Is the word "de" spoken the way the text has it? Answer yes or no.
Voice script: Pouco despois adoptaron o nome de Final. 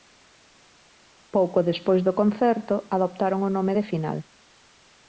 yes